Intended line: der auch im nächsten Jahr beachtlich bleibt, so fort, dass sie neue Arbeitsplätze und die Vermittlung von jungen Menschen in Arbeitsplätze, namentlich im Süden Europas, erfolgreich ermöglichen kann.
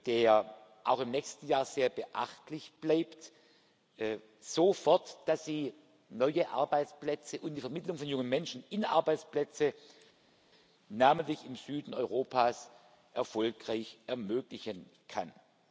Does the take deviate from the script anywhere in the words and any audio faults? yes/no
yes